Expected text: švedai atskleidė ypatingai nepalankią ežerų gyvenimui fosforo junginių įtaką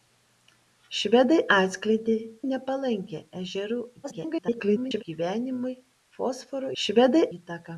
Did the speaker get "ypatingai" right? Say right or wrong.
wrong